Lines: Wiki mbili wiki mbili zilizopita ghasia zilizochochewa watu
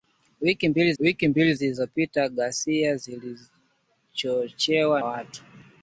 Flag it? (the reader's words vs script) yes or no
no